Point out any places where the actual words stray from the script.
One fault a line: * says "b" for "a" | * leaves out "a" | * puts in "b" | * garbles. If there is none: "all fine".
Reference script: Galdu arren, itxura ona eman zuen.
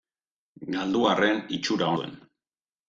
* leaves out "ona eman"